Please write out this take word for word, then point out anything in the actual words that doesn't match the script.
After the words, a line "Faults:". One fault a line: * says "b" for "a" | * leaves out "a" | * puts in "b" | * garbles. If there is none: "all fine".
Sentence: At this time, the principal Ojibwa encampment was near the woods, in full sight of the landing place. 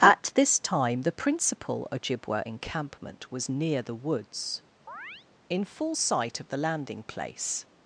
At this time, the principal Ojibwa encampment was near the woods, in full sight of the landing place.
Faults:
all fine